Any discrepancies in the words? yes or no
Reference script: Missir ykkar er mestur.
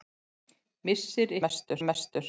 yes